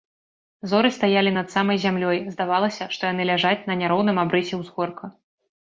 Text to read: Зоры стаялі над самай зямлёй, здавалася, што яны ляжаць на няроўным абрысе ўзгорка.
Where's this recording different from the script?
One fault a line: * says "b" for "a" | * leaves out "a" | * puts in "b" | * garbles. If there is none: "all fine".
all fine